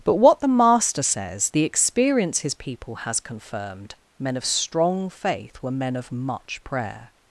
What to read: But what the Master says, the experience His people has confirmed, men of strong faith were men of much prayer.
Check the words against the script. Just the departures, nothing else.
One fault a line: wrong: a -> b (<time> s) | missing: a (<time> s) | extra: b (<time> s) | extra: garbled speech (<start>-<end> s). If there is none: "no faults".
no faults